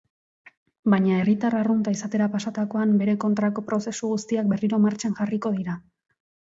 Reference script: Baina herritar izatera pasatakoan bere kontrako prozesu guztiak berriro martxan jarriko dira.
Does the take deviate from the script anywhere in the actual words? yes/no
yes